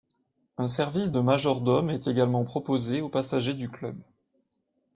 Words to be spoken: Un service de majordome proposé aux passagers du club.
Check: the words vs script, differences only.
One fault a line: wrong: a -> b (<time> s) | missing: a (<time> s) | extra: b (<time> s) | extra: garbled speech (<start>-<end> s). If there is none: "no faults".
extra: est également (1.9 s)